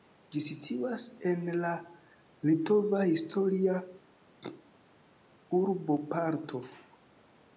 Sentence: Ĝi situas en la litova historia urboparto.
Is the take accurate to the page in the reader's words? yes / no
yes